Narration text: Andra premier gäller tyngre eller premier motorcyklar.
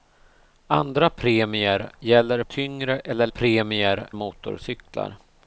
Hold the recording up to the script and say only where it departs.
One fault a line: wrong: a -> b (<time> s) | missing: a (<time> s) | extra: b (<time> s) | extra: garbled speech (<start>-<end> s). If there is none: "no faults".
no faults